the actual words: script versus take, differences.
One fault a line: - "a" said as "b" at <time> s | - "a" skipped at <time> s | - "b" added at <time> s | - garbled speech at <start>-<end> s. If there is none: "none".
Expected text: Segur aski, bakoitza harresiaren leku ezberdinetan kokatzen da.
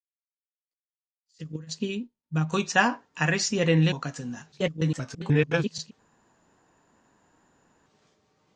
- "leku ezberdinetan" skipped at 3.9 s
- garbled speech at 4.5-5.9 s